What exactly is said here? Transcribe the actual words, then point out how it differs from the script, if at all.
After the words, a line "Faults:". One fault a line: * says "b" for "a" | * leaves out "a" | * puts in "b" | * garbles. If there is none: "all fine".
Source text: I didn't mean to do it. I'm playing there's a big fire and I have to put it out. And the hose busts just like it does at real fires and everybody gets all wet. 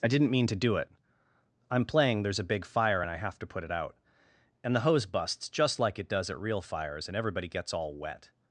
I didn't mean to do it. I'm playing there's a big fire and I have to put it out. And the hose busts just like it does at real fires and everybody gets all wet.
Faults:
all fine